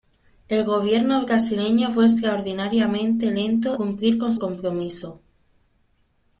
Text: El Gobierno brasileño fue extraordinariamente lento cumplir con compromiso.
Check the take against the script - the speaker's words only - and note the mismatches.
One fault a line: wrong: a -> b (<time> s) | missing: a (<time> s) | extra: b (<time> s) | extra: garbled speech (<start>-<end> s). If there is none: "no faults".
no faults